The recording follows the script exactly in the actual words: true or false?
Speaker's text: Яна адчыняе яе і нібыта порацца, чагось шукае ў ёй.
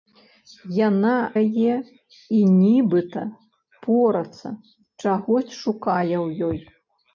false